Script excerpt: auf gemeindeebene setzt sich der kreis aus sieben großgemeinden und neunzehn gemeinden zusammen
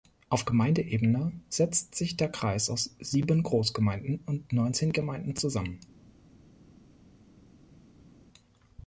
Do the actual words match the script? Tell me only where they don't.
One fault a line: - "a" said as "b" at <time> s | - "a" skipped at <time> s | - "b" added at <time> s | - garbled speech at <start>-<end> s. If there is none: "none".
none